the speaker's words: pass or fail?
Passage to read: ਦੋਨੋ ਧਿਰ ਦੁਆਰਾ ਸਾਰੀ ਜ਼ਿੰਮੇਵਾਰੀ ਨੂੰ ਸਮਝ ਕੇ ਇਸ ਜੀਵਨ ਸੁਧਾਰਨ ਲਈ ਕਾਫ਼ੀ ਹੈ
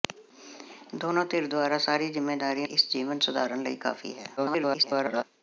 fail